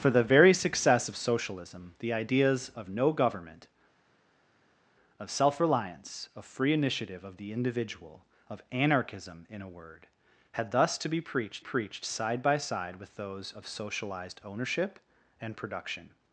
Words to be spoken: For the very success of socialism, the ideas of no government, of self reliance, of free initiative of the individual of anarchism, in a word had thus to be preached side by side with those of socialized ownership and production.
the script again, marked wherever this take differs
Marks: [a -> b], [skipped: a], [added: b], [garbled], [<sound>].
For the very success of socialism, the ideas of no government, of self reliance, of free initiative of the individual of anarchism, in a word had thus to be preached [added: preached] side by side with those of socialized ownership and production.